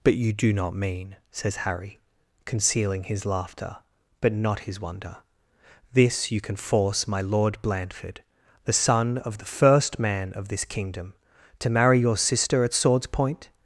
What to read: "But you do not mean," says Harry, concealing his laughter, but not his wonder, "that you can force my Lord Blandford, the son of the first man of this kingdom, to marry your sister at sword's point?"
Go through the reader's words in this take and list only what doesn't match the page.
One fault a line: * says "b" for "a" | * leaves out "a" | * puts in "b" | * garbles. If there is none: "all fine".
* says "this" for "that"